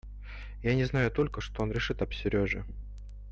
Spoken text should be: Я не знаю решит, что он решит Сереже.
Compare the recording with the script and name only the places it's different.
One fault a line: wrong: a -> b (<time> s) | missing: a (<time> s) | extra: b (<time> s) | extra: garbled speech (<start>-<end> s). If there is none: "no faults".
wrong: решит -> только (1.1 s)
extra: об (2.0 s)